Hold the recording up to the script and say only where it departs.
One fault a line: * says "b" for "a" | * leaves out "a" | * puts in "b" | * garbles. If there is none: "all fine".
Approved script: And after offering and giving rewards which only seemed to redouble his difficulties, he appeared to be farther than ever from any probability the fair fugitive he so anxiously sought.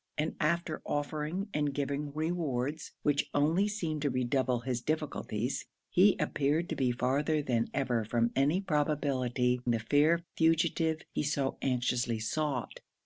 all fine